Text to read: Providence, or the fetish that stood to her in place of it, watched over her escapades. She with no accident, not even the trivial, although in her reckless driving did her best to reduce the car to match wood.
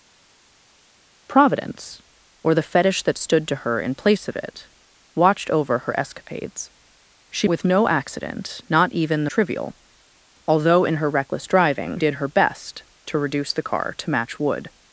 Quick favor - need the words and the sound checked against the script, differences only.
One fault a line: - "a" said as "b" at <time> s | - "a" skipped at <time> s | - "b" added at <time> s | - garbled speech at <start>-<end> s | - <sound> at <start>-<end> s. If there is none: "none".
none